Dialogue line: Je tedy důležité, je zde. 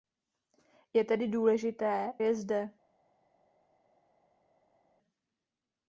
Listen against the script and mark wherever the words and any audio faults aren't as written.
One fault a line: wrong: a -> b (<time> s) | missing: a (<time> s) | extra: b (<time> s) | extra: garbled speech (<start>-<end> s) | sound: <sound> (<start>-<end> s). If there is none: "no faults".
no faults